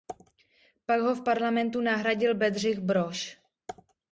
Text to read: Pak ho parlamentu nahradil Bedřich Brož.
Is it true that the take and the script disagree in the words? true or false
true